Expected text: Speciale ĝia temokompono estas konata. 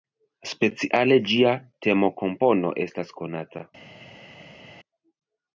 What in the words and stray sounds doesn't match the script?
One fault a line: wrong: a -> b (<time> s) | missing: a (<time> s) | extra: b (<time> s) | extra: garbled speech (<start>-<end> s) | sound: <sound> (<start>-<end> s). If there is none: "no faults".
no faults